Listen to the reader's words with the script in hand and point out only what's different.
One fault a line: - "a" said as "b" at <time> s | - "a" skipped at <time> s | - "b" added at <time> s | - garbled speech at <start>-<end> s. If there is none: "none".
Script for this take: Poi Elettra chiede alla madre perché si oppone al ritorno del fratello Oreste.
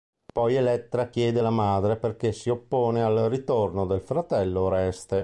none